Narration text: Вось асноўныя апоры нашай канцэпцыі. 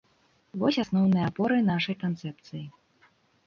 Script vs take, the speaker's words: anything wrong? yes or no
no